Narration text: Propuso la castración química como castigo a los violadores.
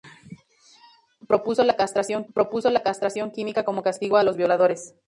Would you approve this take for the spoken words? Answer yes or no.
no